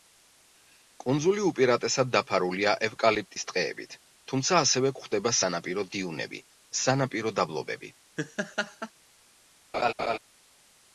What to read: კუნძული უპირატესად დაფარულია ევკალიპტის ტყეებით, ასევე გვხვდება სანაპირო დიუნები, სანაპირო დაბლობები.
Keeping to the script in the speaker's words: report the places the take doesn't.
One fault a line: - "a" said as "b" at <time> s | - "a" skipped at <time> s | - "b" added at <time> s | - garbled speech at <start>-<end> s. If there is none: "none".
- "თუმცა" added at 4.3 s